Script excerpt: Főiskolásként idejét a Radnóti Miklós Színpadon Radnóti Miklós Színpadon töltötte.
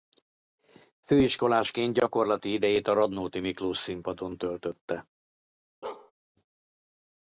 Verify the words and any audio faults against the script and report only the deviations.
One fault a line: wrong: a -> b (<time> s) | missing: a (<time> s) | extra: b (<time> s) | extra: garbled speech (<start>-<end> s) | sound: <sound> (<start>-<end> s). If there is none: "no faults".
extra: gyakorlati (1.9 s)
missing: Radnóti Miklós Színpadon (4.4 s)
sound: bark (5.8-6.1 s)